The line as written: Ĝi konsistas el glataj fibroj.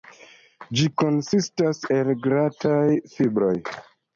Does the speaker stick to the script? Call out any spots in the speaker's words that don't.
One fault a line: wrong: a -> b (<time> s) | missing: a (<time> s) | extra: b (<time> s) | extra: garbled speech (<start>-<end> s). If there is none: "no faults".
no faults